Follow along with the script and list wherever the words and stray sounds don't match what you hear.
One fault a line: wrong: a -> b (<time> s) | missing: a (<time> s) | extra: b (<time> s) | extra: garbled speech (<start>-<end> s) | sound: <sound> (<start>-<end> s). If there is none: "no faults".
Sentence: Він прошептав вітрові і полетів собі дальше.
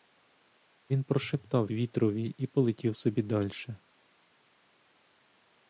no faults